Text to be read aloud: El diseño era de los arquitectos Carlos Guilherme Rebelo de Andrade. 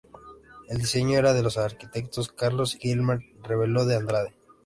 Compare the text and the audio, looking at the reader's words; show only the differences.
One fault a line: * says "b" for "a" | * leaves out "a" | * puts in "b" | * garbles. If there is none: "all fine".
all fine